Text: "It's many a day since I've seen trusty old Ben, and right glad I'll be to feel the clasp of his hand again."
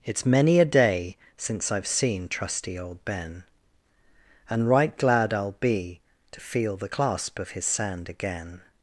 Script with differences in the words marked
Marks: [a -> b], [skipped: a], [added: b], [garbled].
"It's many a day since I've seen trusty old Ben, and right glad I'll be to feel the clasp of his [hand -> sand] again."